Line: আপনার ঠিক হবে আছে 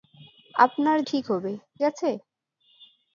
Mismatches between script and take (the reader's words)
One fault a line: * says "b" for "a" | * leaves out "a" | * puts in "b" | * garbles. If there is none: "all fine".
all fine